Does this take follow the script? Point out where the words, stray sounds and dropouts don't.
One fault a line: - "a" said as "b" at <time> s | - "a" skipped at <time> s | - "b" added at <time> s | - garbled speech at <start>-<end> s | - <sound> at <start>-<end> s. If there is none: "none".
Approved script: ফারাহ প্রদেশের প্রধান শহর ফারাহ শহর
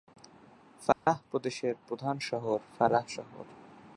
- dropout at 0.9-1.1 s